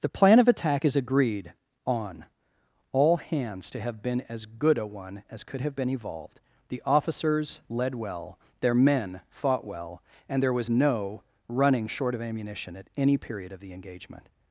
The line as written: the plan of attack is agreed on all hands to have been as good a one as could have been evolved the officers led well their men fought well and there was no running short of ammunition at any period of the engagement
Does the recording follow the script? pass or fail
pass